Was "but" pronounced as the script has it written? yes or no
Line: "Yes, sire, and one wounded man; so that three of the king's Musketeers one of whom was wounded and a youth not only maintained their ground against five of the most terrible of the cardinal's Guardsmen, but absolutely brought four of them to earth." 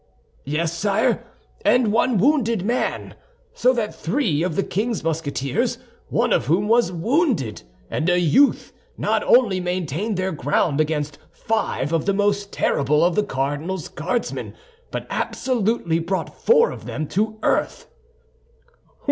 yes